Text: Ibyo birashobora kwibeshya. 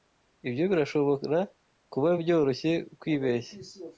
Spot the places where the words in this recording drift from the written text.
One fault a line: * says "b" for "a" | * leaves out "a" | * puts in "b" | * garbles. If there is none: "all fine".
* puts in "kuba byoroshye"